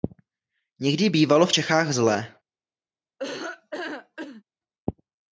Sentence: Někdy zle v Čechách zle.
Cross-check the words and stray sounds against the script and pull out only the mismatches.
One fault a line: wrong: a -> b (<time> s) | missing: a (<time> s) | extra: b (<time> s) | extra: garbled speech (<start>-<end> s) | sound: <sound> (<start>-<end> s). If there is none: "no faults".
wrong: zle -> bývalo (1.1 s)
sound: laugh (3.2-4.4 s)